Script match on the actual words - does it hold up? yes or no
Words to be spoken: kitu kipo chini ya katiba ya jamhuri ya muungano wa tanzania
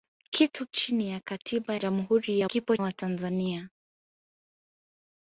no